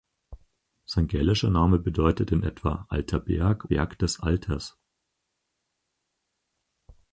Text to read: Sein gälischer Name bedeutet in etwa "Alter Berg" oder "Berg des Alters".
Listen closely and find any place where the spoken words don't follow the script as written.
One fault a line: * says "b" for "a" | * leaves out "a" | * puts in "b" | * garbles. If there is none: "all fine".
* leaves out "oder"